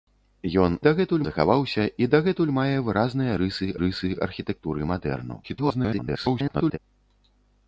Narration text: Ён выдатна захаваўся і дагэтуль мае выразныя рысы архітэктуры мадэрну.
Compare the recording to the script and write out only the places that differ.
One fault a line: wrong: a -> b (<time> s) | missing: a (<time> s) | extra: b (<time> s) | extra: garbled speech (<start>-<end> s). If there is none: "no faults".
wrong: выдатна -> дагэтуль (0.9 s)
extra: рысы (3.8 s)
extra: garbled speech (5.4-6.8 s)